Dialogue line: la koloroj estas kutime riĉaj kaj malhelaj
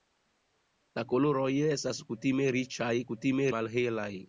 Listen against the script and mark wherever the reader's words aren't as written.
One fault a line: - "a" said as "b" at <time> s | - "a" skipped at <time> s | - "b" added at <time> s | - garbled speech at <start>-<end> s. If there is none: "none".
- "kaj" said as "kutime" at 3.1 s